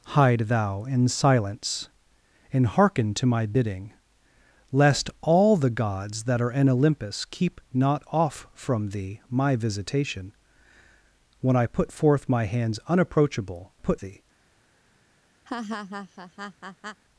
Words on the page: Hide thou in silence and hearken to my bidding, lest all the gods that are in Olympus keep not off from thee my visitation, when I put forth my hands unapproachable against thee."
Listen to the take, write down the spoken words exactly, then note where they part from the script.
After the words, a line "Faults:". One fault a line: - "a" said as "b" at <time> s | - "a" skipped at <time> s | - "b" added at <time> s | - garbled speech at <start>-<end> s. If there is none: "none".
Hide thou in silence and hearken to my bidding, lest all the gods that are in Olympus keep not off from thee my visitation, when I put forth my hands unapproachable put thee."
Faults:
- "against" said as "put" at 13.8 s